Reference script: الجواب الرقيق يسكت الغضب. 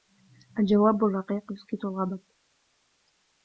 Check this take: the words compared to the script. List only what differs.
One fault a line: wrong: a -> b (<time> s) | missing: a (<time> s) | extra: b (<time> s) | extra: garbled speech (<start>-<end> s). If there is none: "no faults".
no faults